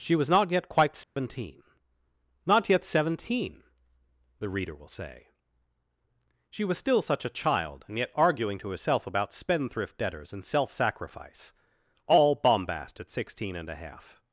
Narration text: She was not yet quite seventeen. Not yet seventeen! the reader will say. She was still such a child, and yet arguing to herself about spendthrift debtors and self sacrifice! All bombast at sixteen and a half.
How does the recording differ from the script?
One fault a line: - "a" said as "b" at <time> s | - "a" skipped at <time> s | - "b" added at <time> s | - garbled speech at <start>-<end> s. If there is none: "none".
none